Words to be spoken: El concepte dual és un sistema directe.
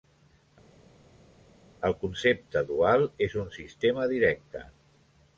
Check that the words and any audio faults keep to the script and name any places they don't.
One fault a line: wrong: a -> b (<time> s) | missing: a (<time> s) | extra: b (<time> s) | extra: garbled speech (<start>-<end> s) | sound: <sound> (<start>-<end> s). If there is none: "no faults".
no faults